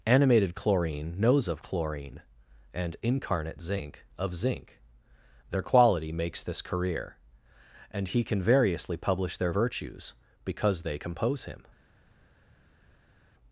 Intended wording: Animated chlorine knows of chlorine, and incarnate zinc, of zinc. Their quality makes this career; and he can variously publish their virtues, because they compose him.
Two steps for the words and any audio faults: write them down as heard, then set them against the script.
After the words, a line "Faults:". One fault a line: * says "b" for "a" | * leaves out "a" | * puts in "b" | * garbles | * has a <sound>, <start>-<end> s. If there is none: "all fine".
Animated chlorine knows of chlorine, and incarnate zinc, of zinc. Their quality makes this career; and he can variously publish their virtues, because they compose him.
Faults:
all fine